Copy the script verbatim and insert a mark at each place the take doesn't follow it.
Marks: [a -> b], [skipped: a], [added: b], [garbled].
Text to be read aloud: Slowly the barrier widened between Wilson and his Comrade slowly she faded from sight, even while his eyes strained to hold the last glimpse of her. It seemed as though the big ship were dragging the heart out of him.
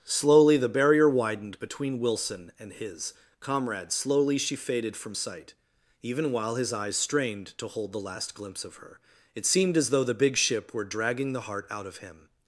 Slowly the barrier widened between Wilson and his Comrade slowly she faded from sight, even while his eyes strained to hold the last glimpse of her. It seemed as though the big ship were dragging the heart out of him.